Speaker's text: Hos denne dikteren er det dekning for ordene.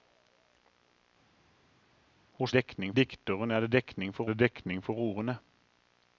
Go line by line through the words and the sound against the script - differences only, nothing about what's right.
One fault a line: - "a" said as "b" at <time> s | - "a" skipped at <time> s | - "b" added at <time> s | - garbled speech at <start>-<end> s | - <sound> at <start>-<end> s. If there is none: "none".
- "denne" said as "dekning" at 2.5 s
- "det dekning for" added at 4.3 s